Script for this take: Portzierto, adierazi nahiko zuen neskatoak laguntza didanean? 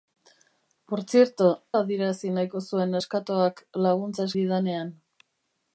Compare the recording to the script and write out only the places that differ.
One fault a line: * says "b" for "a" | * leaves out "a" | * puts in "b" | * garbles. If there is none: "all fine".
all fine